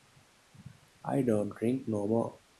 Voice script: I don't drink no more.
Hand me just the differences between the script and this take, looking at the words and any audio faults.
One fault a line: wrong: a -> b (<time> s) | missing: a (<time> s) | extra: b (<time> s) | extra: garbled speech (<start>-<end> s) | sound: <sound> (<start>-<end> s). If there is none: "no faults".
no faults